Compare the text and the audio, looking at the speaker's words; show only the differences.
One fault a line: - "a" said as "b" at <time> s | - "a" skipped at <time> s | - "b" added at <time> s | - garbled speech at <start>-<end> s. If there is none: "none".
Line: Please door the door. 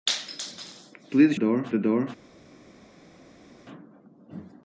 none